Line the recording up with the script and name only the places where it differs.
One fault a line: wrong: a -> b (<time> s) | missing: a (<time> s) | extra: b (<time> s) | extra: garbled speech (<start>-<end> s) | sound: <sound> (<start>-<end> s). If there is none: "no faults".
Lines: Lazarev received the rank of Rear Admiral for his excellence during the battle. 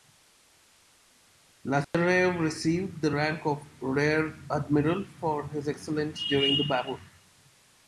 sound: dropout (1.8-1.9 s)